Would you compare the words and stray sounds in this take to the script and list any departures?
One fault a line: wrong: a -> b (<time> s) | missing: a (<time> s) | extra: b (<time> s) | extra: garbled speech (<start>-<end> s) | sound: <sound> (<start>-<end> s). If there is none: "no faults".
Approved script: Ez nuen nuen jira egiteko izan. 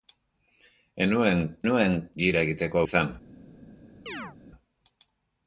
sound: chirp (4.1-4.4 s)